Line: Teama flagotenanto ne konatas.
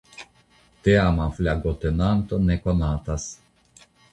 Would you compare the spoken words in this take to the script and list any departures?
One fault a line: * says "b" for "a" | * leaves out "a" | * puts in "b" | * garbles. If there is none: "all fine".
all fine